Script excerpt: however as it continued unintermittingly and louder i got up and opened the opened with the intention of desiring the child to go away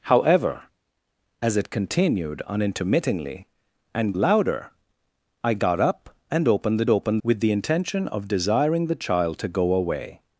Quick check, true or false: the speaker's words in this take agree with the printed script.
true